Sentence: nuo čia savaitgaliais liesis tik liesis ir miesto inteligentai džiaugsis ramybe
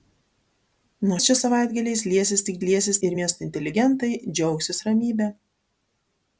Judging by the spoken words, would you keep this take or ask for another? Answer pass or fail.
pass